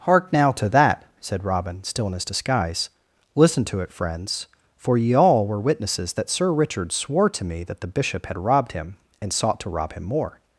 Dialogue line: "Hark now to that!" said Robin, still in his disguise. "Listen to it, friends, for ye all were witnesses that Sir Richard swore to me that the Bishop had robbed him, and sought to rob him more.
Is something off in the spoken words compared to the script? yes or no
no